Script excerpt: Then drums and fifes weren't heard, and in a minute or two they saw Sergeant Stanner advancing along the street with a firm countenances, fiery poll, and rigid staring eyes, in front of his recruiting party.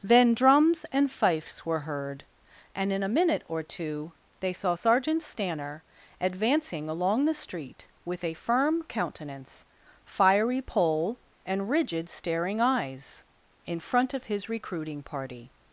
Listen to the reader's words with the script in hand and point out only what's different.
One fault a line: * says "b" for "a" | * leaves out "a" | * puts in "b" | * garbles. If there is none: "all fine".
* says "were" for "weren't"
* says "countenance" for "countenances"